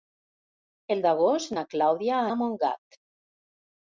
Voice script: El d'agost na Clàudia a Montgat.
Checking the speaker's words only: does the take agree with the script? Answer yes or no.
yes